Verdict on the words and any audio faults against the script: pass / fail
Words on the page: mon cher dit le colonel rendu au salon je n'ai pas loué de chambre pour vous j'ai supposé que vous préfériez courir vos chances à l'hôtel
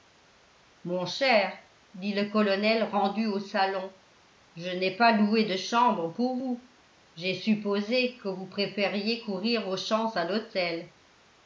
pass